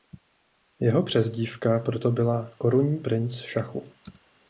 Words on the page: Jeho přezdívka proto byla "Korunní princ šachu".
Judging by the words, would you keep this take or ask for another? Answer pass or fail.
pass